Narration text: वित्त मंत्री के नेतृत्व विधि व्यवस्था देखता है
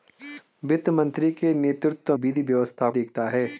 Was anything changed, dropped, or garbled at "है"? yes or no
no